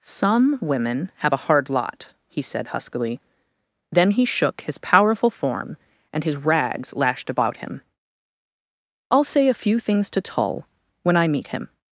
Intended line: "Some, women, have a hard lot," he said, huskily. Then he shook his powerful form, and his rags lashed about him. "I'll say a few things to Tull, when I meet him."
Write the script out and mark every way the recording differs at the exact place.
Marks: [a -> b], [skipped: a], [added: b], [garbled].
"Some, women, have a hard lot," he said, huskily. Then he shook his powerful form, and his rags lashed about him. "I'll say a few things to Tull, when I meet him."